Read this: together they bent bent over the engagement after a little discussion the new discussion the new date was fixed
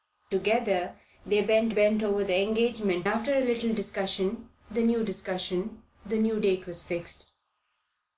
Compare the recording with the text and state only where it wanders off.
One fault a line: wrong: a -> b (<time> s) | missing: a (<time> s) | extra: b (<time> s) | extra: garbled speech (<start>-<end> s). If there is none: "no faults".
no faults